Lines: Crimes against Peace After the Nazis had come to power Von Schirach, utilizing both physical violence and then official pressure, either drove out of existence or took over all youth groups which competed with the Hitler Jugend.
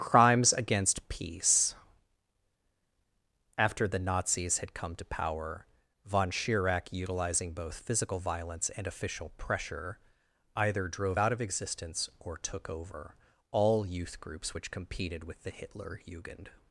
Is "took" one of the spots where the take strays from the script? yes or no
no